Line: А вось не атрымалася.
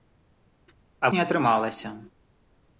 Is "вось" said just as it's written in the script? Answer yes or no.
no